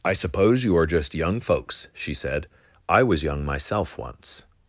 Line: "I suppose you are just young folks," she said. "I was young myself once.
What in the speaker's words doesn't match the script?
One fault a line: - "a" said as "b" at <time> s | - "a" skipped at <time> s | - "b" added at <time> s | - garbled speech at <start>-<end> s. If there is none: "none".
none